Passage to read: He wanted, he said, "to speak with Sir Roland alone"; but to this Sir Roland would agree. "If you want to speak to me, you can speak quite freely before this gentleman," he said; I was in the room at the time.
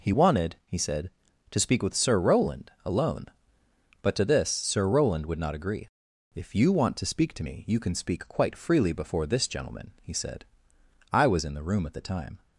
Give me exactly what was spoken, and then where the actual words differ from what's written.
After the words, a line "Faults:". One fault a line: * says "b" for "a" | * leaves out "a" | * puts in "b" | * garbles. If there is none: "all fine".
He wanted, he said, "to speak with Sir Roland alone"; but to this Sir Roland would not agree. "If you want to speak to me, you can speak quite freely before this gentleman," he said; I was in the room at the time.
Faults:
* puts in "not"